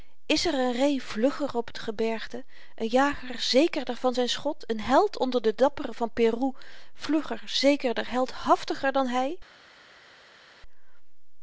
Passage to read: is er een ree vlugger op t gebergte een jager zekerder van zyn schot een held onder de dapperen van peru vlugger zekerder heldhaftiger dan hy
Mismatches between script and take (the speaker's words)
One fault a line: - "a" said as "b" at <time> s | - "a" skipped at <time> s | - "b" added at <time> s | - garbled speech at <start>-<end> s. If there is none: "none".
none